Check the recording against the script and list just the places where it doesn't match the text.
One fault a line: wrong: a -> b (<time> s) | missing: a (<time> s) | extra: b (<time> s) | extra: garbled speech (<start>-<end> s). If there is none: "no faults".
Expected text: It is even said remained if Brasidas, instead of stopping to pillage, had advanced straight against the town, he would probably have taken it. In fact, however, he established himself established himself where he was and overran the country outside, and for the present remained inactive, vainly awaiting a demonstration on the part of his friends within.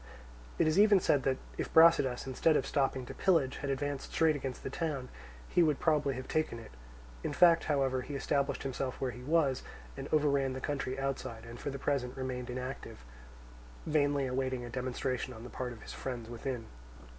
wrong: remained -> that (1.2 s)
missing: established himself (9.0 s)